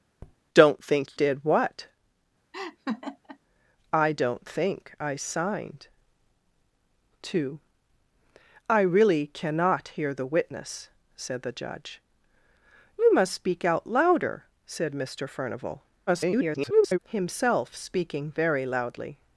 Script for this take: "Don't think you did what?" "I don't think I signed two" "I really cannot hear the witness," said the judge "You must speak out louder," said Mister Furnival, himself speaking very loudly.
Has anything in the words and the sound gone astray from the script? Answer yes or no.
yes